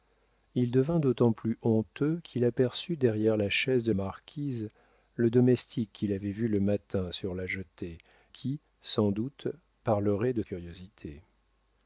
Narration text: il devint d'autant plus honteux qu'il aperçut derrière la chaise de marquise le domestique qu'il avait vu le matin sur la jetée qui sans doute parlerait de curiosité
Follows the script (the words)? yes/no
yes